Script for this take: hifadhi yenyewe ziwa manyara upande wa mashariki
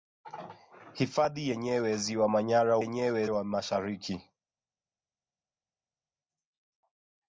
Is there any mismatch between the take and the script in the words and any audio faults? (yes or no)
yes